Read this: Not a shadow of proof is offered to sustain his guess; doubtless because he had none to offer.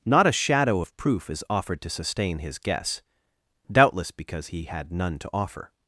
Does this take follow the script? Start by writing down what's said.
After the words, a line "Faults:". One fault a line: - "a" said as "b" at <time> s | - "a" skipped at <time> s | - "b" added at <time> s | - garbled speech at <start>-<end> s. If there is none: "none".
Not a shadow of proof is offered to sustain his guess; doubtless because he had none to offer.
Faults:
none